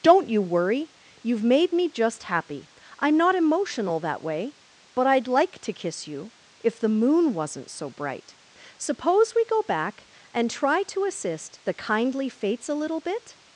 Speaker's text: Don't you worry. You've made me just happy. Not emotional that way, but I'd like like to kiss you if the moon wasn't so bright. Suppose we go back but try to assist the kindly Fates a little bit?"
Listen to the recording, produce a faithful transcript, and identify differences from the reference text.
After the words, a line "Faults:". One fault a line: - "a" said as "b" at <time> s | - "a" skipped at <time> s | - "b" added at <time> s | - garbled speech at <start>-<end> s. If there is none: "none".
Don't you worry. You've made me just happy. I'm not emotional that way, but I'd like to kiss you if the moon wasn't so bright. Suppose we go back and try to assist the kindly Fates a little bit?"
Faults:
- "I'm" added at 3.0 s
- "like" skipped at 5.6 s
- "but" said as "and" at 10.3 s